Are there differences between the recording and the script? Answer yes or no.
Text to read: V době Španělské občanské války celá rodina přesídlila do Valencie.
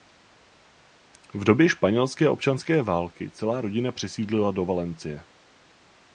no